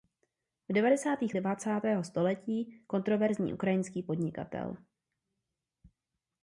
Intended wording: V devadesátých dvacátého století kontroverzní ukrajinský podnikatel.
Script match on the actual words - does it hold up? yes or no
yes